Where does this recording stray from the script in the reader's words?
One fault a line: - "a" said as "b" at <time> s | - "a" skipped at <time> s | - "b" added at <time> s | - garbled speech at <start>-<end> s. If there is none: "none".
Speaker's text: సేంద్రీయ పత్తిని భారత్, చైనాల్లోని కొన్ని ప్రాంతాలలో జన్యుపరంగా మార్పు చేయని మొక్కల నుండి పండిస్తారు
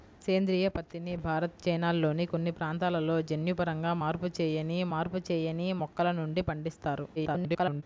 - "మార్పు చేయని" added at 4.9 s
- garbled speech at 7.2-7.8 s